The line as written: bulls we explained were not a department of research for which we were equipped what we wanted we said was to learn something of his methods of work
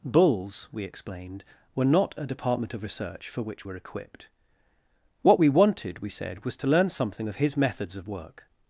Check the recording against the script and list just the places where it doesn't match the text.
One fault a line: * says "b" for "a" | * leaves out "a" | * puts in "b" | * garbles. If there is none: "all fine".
* leaves out "we"